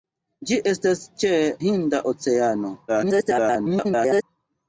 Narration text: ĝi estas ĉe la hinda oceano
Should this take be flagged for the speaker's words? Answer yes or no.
yes